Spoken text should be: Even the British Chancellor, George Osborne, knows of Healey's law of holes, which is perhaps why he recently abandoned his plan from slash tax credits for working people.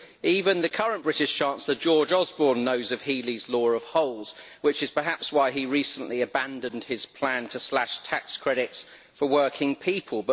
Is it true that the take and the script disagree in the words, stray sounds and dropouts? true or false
true